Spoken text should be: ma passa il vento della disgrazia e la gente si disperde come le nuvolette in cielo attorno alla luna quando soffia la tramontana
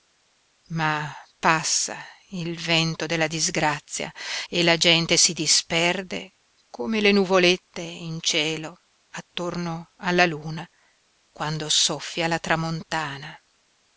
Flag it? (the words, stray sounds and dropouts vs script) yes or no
no